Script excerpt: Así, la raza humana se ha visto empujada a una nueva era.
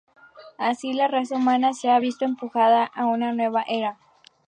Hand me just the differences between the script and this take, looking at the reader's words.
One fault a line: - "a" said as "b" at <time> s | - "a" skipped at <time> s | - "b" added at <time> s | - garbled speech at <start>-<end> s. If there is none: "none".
none